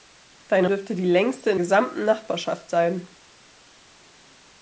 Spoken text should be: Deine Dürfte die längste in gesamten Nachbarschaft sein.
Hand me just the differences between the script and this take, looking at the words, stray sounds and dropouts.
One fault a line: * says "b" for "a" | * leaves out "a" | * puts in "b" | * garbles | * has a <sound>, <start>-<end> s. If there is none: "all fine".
all fine